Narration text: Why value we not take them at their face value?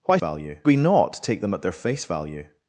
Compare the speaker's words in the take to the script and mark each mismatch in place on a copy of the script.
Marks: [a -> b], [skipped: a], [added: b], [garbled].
Why value we not take them at their face value?